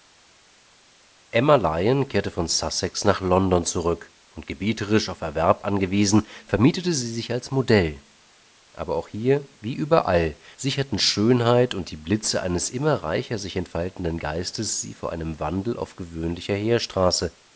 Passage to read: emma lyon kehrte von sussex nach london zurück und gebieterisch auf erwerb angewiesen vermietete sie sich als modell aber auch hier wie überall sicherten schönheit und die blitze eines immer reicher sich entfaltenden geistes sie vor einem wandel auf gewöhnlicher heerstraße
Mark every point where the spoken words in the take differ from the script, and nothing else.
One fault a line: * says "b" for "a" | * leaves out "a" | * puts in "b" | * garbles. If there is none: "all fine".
all fine